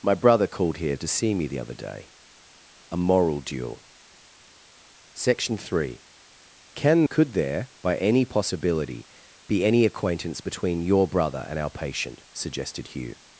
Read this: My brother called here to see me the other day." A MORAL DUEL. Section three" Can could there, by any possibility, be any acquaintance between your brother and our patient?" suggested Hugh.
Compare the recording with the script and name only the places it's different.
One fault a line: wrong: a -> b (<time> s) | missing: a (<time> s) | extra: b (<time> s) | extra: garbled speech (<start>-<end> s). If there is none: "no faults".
no faults